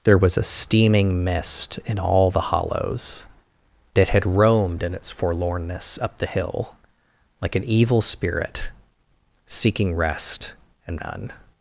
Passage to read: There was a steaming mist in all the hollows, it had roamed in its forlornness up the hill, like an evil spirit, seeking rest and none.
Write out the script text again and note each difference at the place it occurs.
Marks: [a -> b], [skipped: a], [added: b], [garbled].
There was a steaming mist in all the hollows, it had roamed in its forlornness up the hill, like an evil spirit, seeking rest and none.